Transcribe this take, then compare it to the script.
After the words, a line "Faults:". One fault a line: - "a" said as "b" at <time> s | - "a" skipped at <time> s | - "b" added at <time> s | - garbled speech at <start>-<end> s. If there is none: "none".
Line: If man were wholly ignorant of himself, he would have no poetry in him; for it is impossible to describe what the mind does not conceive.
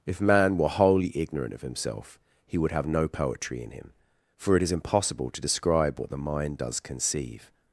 If man were wholly ignorant of himself, he would have no poetry in him; for it is impossible to describe what the mind does conceive.
Faults:
- "not" skipped at 6.8 s